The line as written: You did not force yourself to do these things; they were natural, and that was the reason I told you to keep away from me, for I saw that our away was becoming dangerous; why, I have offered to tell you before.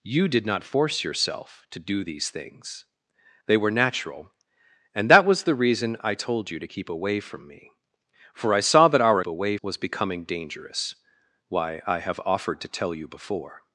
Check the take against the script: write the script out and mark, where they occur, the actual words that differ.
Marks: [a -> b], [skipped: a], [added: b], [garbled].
You did not force yourself to do these things; they were natural, and that was the reason I told you to keep away from me, for I saw that our away was becoming dangerous; why, I have offered to tell you before.